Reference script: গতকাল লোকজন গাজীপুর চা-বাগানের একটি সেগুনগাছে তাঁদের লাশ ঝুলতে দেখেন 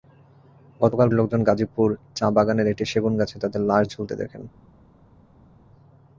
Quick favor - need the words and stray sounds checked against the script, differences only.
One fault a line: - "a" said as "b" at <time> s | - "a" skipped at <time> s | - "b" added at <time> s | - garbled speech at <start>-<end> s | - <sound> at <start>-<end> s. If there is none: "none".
none